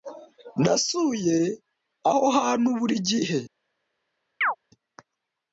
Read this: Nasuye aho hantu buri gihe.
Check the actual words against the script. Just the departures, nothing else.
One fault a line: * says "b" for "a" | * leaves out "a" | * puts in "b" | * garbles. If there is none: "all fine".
all fine